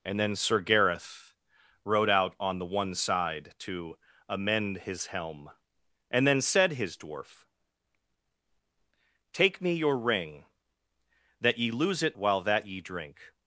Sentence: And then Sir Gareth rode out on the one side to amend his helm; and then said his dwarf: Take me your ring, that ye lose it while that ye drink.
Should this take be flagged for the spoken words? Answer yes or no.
no